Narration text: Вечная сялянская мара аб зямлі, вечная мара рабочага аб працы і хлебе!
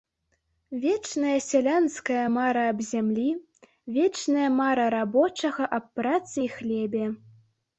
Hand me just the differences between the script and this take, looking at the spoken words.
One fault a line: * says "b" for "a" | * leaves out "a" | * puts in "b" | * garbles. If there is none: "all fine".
all fine